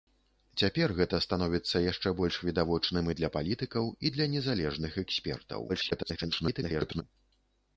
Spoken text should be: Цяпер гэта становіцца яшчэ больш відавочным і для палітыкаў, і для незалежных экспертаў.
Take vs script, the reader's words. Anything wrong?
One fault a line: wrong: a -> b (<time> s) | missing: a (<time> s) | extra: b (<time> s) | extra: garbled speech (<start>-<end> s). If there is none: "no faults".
extra: garbled speech (5.7-7.0 s)